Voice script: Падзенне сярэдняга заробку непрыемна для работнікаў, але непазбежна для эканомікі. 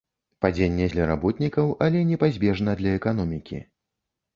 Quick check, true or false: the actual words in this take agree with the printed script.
false